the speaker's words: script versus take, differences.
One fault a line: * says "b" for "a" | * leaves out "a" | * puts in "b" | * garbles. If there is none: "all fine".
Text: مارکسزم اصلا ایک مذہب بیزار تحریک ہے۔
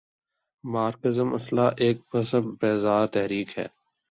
all fine